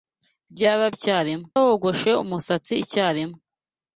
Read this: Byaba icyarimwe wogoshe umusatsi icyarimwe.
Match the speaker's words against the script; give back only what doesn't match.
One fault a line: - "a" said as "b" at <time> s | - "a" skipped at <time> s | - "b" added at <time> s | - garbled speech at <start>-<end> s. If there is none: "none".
none